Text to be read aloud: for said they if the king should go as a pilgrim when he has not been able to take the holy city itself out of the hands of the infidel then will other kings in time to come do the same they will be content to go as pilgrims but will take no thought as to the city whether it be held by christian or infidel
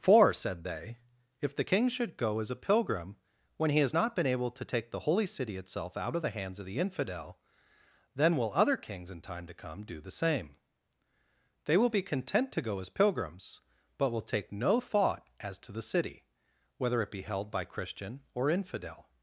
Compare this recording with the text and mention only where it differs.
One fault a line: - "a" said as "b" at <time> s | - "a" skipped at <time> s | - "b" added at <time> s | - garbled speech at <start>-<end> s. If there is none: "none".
none